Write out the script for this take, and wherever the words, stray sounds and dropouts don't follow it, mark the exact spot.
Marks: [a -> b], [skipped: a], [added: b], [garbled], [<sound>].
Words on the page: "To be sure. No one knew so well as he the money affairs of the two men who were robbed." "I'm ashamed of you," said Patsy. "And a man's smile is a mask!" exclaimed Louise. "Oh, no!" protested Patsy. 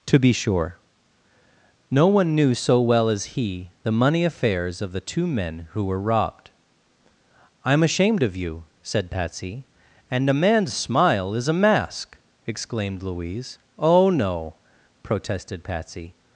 "To be sure. No one knew so well as he the money affairs of the two men who were robbed." "I'm ashamed of you," said Patsy. "And a man's smile is a mask!" exclaimed Louise. "Oh, no!" protested Patsy.